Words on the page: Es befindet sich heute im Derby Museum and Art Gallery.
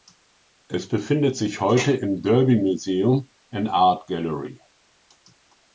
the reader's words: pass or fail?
pass